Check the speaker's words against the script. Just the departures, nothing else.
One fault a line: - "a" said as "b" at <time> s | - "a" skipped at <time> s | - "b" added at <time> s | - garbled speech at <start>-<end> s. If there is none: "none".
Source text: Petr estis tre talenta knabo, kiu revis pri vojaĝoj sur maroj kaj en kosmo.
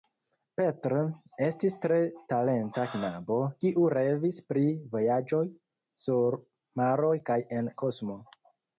none